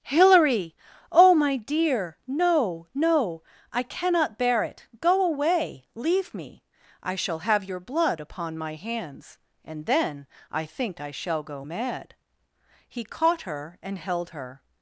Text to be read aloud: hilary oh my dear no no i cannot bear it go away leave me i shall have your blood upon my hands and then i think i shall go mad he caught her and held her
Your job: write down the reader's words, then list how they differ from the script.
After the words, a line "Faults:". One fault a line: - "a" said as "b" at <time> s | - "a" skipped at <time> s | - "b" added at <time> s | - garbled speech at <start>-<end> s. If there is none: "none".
hilary oh my dear no no i cannot bear it go away leave me i shall have your blood upon my hands and then i think i shall go mad he caught her and held her
Faults:
none